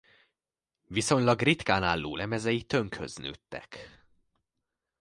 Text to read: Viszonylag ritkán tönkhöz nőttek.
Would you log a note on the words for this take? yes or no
yes